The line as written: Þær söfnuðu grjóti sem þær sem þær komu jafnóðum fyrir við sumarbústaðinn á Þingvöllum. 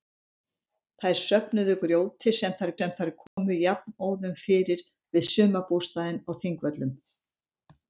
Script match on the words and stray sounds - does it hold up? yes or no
no